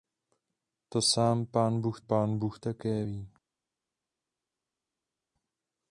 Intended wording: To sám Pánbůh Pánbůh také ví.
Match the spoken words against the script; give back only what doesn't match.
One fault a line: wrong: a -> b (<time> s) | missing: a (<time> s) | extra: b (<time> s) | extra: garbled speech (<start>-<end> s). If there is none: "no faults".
no faults